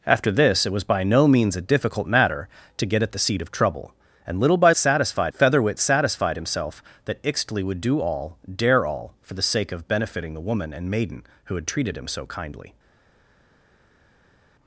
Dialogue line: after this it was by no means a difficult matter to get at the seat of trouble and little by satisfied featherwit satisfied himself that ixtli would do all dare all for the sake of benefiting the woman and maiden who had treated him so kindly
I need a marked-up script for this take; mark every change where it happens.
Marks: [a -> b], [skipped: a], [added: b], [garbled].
after this it was by no means a difficult matter to get at the seat of trouble and little by satisfied featherwit satisfied himself that ixtli would do all dare all for the sake of benefiting the woman and maiden who had treated him so kindly